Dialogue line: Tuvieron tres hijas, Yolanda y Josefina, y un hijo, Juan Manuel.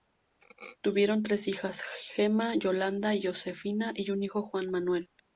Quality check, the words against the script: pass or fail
fail